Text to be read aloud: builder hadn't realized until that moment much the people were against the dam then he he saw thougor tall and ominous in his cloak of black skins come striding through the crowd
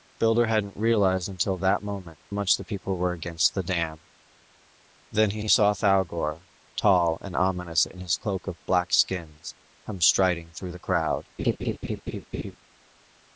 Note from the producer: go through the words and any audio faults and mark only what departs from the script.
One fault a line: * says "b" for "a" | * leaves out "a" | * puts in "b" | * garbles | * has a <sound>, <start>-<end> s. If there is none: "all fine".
* has a laugh, 11.4-12.6 s